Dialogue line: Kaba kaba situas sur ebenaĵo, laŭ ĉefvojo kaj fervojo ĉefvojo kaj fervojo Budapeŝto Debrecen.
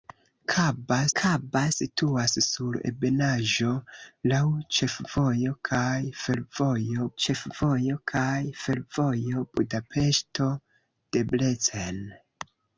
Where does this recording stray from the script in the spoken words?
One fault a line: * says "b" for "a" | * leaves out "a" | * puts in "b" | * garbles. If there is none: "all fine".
all fine